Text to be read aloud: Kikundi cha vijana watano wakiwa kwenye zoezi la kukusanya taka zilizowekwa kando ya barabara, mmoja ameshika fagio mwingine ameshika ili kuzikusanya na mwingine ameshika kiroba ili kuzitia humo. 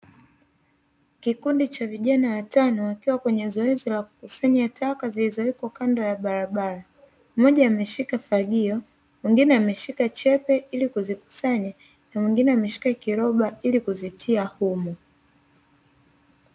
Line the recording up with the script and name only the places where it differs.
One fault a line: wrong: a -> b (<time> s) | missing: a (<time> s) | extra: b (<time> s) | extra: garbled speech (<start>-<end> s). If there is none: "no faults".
extra: chepe (10.1 s)